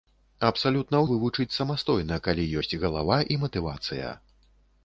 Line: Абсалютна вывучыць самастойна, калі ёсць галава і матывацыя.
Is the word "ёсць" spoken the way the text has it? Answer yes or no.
yes